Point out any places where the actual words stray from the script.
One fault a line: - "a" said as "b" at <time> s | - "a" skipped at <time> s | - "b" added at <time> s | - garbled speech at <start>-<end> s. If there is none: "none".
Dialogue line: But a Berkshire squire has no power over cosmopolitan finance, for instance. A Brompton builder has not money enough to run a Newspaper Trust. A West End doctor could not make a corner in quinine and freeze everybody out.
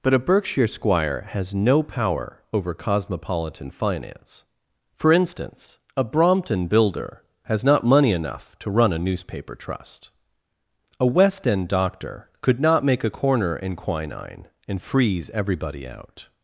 none